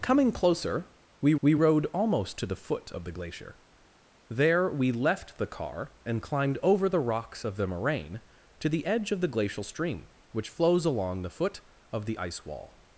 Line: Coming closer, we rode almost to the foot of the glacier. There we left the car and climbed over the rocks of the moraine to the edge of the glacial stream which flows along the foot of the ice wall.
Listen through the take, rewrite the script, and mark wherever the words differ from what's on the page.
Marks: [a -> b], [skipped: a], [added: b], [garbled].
Coming closer, we [added: we] rode almost to the foot of the glacier. There we left the car and climbed over the rocks of the moraine to the edge of the glacial stream which flows along the foot of the ice wall.